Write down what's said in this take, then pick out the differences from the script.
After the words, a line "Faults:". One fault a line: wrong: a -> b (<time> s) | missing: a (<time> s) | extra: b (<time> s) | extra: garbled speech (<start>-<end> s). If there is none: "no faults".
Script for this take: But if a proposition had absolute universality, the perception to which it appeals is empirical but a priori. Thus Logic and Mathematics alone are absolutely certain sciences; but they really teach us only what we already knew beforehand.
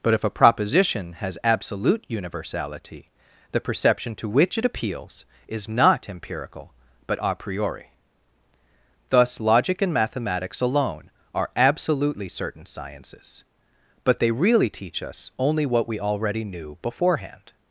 But if a proposition has absolute universality, the perception to which it appeals is not empirical but a priori. Thus Logic and Mathematics alone are absolutely certain sciences; but they really teach us only what we already knew beforehand.
Faults:
wrong: had -> has (1.1 s)
extra: not (5.7 s)